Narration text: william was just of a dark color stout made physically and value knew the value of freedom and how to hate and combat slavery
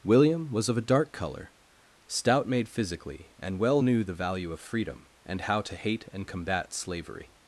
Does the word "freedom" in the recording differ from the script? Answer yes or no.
no